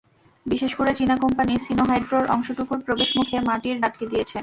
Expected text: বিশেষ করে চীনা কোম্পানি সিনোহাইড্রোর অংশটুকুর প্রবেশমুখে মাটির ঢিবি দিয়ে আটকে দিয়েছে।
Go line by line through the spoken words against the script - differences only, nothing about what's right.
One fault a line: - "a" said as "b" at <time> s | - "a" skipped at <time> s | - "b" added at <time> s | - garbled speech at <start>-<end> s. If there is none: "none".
- "ঢিবি দিয়ে" skipped at 3.8 s